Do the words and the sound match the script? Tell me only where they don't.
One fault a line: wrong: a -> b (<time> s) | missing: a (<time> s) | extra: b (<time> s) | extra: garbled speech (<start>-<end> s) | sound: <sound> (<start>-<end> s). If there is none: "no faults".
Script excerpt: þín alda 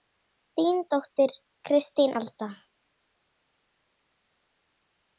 extra: dóttir kristín (0.9 s)